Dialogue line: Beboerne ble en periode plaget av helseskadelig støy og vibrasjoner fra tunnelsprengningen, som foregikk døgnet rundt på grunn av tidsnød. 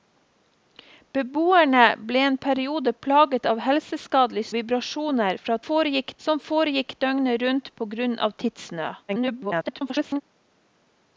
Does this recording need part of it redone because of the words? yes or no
yes